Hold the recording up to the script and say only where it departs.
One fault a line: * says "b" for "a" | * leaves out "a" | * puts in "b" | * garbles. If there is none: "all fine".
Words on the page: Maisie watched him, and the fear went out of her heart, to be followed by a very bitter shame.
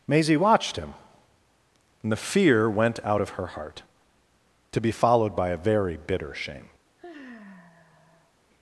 all fine